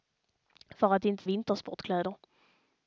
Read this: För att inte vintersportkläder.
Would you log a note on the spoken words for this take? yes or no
no